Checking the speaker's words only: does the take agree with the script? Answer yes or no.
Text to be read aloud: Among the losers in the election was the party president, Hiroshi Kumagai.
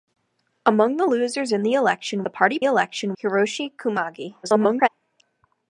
no